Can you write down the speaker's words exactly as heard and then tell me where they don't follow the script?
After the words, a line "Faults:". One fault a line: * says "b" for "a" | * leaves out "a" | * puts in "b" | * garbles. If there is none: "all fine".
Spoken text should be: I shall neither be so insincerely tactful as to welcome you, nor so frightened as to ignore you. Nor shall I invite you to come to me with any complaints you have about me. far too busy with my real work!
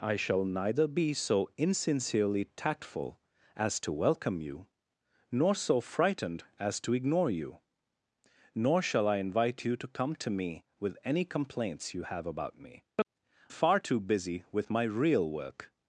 I shall neither be so insincerely tactful as to welcome you, nor so frightened as to ignore you. Nor shall I invite you to come to me with any complaints you have about me. far too busy with my real work!
Faults:
all fine